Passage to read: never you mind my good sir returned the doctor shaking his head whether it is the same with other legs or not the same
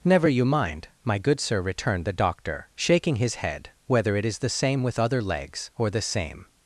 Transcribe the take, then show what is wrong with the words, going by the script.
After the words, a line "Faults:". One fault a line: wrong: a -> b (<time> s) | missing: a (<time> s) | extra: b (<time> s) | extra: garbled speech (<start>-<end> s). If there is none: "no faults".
never you mind my good sir returned the doctor shaking his head whether it is the same with other legs or the same
Faults:
missing: not (5.9 s)